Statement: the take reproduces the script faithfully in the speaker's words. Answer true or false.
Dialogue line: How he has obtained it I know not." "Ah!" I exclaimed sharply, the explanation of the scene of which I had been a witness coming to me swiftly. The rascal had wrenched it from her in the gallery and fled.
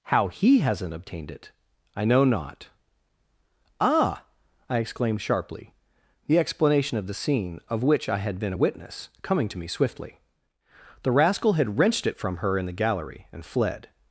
false